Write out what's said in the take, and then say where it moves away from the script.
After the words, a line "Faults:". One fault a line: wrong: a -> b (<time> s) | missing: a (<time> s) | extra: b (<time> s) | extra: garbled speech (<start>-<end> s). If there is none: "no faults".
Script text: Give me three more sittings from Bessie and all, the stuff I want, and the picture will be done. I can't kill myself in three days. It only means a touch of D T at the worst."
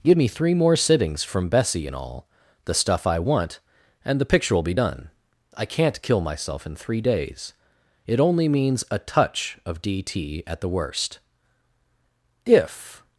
Give me three more sittings from Bessie and all, the stuff I want, and the picture will be done. I can't kill myself in three days. It only means a touch of D T at the worst." "If
Faults:
extra: If (12.4 s)